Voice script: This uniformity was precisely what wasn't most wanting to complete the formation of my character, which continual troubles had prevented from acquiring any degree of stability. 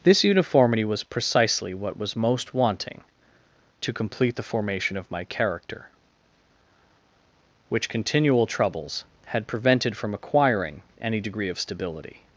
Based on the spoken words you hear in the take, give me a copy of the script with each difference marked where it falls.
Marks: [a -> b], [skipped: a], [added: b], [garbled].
This uniformity was precisely what [wasn't -> was] most wanting to complete the formation of my character, which continual troubles had prevented from acquiring any degree of stability.